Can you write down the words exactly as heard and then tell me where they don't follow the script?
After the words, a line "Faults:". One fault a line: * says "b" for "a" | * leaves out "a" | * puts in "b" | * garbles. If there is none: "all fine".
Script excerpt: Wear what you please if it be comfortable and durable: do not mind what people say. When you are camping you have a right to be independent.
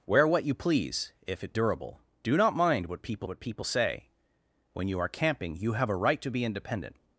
Wear what you please if it durable: do not mind what people what people say. When you are camping you have a right to be independent.
Faults:
* leaves out "be comfortable and"
* puts in "what people"